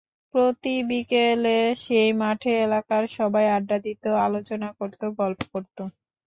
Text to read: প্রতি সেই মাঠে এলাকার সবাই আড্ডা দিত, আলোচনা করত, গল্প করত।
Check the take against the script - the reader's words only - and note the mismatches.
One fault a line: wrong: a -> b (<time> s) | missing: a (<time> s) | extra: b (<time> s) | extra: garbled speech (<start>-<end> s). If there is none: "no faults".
extra: বিকেলে (0.9 s)